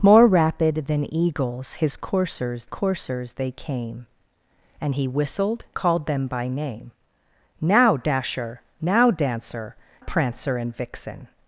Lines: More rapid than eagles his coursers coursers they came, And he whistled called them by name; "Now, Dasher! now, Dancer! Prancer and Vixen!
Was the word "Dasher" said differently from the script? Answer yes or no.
no